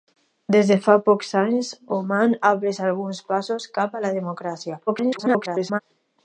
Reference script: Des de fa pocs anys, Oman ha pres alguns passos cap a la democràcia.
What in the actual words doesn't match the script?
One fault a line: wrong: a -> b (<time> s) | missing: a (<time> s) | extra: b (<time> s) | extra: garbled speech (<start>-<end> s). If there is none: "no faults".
extra: garbled speech (4.9-5.8 s)